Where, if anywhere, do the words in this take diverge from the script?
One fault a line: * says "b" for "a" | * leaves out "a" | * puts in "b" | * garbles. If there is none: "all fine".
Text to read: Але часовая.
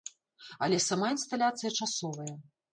* puts in "сама інсталяцыя"